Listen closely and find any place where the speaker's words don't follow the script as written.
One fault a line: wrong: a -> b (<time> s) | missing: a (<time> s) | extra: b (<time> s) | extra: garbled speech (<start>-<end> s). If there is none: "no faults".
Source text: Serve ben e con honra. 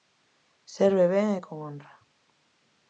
no faults